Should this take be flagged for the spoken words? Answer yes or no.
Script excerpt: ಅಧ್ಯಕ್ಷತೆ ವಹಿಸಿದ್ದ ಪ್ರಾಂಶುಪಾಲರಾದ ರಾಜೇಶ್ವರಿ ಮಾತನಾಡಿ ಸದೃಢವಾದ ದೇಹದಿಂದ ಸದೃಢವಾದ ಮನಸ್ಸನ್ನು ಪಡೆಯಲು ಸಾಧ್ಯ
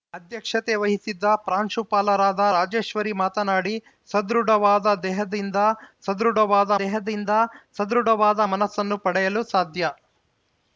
yes